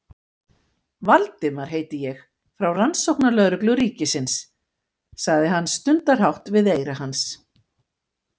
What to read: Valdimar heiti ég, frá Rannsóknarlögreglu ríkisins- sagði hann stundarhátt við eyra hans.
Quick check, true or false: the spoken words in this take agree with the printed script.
true